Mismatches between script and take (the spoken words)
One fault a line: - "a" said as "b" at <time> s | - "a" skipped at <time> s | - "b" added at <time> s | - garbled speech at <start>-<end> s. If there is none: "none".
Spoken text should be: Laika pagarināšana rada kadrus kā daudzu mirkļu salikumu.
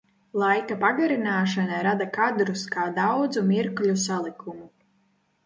none